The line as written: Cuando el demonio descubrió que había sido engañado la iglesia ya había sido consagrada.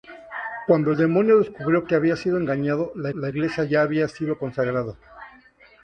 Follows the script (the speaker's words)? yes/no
no